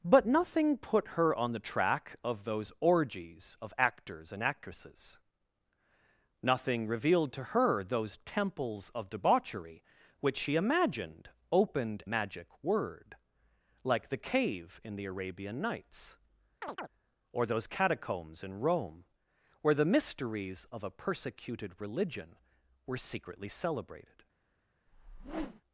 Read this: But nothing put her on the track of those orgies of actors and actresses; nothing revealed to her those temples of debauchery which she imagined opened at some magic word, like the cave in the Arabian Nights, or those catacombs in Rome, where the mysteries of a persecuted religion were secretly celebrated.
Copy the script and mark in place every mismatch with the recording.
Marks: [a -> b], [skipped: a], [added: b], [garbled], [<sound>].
But nothing put her on the track of those orgies of actors and actresses; nothing revealed to her those temples of debauchery which she imagined opened [skipped: at some] magic word, like the cave in the Arabian Nights, [chirp] or those catacombs in Rome, where the mysteries of a persecuted religion were secretly celebrated. [whoosh]